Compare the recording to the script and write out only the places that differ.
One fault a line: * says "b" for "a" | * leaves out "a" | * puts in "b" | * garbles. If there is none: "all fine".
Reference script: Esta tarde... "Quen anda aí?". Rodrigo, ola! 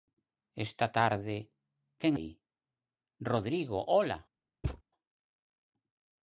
* leaves out "anda"